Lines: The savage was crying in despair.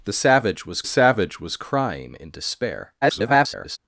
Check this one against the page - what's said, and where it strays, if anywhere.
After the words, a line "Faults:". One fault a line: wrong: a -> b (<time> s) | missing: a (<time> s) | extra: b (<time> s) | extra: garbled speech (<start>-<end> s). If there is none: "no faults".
The savage was savage was crying in despair. [garbled]
Faults:
extra: savage was (0.8 s)
extra: garbled speech (3.0-3.8 s)